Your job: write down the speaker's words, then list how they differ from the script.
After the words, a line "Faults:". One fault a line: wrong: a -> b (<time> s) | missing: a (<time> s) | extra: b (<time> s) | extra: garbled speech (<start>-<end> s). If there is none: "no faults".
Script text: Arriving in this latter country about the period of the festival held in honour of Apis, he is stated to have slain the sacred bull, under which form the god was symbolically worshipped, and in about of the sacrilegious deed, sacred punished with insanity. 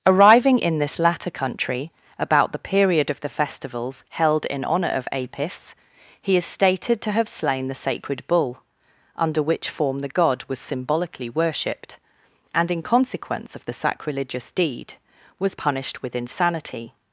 Arriving in this latter country about the period of the festivals held in honour of Apis, he is stated to have slain the sacred bull, under which form the god was symbolically worshipped, and in consequence of the sacrilegious deed, was punished with insanity.
Faults:
wrong: festival -> festivals (3.3 s)
wrong: about -> consequence (12.8 s)
wrong: sacred -> was (15.4 s)